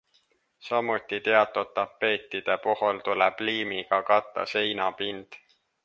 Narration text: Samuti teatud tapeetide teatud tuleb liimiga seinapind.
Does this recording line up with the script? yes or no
no